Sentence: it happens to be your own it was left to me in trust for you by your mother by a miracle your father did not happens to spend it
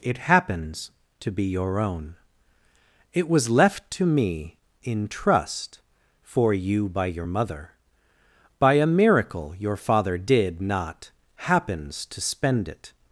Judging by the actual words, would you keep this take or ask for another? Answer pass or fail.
pass